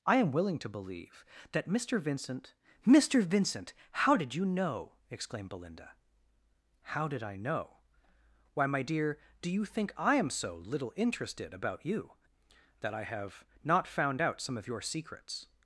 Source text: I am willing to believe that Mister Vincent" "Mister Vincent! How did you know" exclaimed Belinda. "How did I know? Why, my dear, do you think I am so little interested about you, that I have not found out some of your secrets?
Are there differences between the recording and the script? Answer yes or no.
no